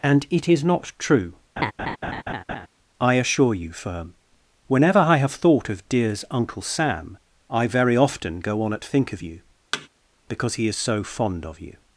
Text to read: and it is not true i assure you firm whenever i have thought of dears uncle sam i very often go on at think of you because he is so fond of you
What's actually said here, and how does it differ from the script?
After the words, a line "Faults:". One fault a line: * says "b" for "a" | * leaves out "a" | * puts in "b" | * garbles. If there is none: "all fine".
and it is not true i assure you firm whenever i have thought of dears uncle sam i very often go on at think of you because he is so fond of you
Faults:
all fine